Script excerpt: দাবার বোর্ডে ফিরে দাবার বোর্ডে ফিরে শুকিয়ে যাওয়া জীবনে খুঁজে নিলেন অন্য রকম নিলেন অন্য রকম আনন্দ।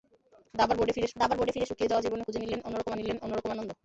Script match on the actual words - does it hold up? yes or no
yes